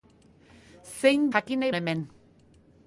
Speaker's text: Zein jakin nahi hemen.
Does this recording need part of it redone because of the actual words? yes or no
no